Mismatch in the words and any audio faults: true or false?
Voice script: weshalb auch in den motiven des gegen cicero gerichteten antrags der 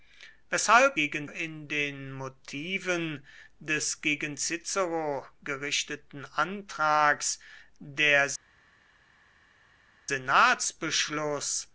true